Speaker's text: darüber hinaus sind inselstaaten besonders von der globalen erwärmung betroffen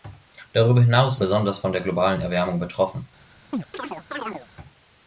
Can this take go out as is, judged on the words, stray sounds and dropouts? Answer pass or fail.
fail